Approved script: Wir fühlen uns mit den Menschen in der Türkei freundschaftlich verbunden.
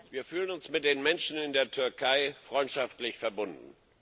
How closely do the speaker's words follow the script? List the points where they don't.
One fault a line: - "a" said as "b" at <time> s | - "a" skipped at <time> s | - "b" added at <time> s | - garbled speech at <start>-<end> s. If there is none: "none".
none